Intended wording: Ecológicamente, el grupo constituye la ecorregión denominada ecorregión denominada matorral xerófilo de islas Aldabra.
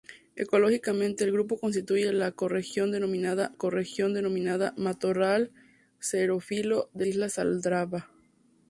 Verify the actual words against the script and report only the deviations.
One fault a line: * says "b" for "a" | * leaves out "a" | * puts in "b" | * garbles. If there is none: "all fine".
all fine